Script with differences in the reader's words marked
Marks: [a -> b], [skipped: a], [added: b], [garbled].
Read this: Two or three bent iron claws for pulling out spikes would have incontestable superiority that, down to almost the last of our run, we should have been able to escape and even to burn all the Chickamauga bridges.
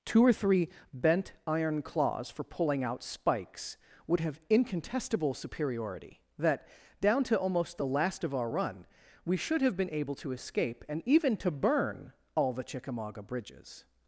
Two or three bent iron claws for pulling out spikes would have incontestable superiority that, down to almost the last of our run, we should have been able to escape and even to burn all the Chickamauga bridges.